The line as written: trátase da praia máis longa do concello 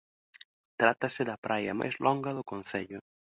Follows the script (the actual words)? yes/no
yes